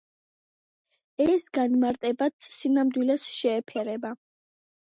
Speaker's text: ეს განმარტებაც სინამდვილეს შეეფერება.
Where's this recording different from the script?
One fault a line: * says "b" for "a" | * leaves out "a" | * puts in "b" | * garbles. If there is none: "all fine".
all fine